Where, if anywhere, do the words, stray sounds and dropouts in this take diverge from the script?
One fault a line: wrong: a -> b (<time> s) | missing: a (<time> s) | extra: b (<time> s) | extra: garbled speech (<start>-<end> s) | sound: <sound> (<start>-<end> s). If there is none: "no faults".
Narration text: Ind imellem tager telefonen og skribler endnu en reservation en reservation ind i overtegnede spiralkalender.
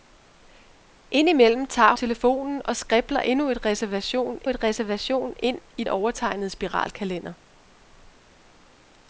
no faults